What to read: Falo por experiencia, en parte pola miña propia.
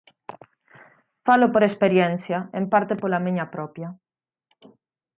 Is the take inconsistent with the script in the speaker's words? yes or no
no